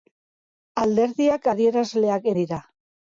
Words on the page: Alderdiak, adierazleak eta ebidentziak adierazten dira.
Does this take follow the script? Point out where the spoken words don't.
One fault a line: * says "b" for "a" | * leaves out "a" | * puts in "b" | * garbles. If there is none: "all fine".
* leaves out "eta ebidentziak adierazten"